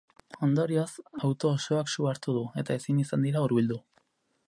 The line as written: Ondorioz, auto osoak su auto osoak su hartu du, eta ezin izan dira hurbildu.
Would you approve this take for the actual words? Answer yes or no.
no